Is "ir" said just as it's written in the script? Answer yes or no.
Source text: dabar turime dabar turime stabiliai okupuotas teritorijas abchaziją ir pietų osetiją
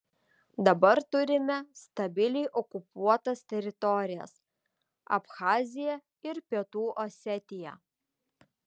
yes